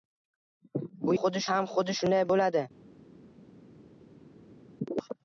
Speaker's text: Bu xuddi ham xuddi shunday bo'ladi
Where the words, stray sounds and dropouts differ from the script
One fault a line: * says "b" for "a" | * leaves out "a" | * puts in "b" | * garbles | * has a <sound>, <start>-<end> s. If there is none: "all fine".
all fine